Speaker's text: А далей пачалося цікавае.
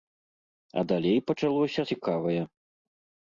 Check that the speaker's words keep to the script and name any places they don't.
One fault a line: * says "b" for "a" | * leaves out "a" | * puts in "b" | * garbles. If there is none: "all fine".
all fine